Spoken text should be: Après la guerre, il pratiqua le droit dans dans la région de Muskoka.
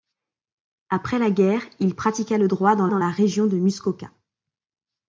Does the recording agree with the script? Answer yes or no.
yes